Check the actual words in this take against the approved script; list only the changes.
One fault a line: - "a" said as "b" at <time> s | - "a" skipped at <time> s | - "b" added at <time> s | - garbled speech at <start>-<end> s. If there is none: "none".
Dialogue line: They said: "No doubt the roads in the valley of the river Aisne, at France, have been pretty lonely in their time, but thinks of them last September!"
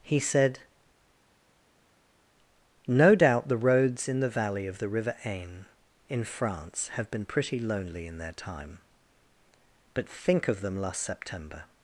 - "They" said as "He" at 0.0 s
- "at" said as "in" at 6.1 s
- "thinks" said as "think" at 10.1 s